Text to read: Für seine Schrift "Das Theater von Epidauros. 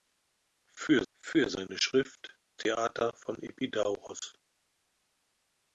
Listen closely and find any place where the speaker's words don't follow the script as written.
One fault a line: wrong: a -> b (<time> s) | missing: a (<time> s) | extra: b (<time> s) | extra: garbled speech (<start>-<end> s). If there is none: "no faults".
extra: für (1.1 s)
missing: Das (2.4 s)